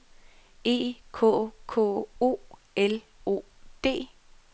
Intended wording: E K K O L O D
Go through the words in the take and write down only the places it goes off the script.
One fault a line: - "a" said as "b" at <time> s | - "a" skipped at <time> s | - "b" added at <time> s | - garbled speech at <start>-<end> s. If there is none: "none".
none